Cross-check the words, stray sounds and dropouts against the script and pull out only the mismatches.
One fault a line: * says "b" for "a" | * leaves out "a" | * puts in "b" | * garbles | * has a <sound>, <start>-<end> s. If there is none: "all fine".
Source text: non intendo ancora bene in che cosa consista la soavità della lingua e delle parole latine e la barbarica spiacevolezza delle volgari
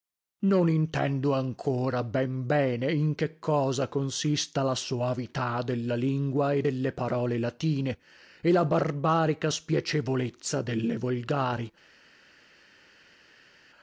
* puts in "ben"